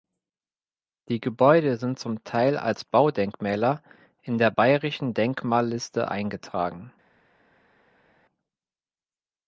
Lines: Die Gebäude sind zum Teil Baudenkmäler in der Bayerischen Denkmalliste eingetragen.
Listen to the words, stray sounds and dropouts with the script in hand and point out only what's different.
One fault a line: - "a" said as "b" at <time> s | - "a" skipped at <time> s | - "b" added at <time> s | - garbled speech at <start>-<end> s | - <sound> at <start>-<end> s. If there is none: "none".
- "als" added at 2.6 s